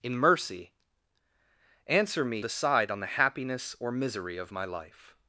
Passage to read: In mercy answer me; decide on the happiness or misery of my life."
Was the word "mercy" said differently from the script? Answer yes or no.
no